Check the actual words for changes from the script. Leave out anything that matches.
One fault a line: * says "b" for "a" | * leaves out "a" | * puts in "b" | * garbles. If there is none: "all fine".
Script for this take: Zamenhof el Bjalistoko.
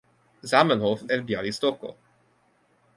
all fine